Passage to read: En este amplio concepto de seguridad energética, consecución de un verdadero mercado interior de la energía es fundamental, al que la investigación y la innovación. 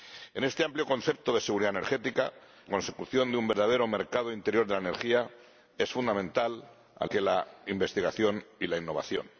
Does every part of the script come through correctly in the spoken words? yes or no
yes